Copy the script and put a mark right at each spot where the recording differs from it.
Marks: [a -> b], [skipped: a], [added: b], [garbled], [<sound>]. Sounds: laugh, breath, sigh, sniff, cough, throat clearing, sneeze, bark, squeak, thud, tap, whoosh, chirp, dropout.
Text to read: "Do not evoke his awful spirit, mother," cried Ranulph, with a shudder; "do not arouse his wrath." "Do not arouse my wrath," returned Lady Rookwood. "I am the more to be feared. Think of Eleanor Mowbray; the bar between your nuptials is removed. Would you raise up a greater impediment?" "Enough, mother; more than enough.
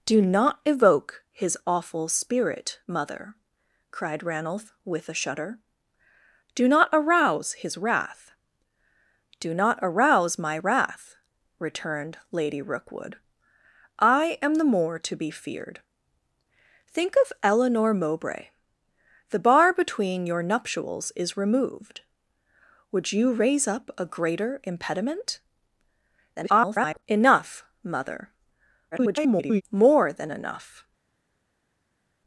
"Do not evoke his awful spirit, mother," cried Ranulph, with a shudder; "do not arouse his wrath." "Do not arouse my wrath," returned Lady Rookwood. "I am the more to be feared. Think of Eleanor Mowbray; the bar between your nuptials is removed. Would you raise up a greater impediment?" [garbled] "Enough, mother; [garbled] more than enough.